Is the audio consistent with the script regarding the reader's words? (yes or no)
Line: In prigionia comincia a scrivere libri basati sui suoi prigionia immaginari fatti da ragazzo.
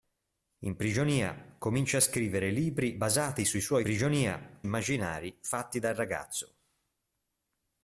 yes